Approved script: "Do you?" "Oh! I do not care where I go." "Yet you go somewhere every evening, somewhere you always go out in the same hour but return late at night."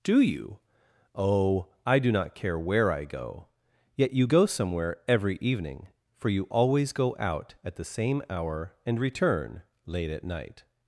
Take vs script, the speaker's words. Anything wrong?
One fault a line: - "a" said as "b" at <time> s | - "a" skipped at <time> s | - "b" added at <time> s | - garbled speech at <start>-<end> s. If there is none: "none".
- "somewhere" said as "for" at 6.1 s
- "in" said as "at" at 7.6 s
- "but" said as "and" at 8.8 s